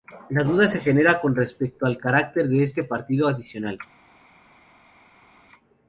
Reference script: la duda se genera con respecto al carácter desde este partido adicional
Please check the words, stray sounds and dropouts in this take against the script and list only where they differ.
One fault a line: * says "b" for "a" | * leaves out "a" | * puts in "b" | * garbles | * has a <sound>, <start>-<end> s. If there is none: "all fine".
* says "de" for "desde"